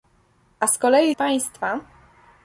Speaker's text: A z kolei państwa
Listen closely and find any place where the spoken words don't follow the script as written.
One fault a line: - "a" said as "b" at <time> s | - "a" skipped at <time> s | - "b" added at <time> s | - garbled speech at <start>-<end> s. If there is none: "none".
none